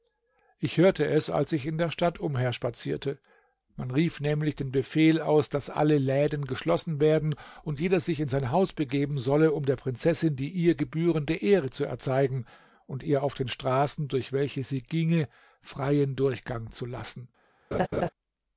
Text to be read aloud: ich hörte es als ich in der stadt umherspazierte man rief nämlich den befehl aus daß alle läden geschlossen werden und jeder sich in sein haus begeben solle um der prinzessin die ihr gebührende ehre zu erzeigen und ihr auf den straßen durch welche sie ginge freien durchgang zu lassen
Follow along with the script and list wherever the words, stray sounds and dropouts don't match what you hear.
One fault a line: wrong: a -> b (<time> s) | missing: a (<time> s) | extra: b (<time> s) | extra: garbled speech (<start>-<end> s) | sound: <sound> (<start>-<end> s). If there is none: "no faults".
sound: laugh (17.7-18.1 s)